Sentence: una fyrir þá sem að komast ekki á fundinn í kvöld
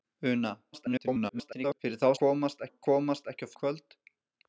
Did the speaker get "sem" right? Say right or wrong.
wrong